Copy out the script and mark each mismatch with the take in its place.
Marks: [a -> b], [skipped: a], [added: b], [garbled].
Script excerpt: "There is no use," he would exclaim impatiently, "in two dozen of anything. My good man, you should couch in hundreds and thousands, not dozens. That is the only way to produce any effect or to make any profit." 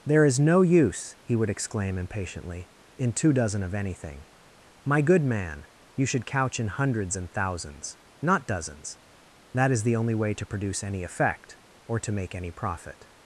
"There is no use," he would exclaim impatiently, "in two dozen of anything. My good man, you should couch in hundreds and thousands, not dozens. That is the only way to produce any effect or to make any profit."